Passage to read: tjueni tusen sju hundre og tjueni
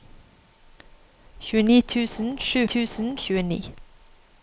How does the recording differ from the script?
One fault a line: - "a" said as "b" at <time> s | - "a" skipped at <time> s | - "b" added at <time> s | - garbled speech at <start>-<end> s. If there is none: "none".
- "hundre" said as "tusen" at 2.7 s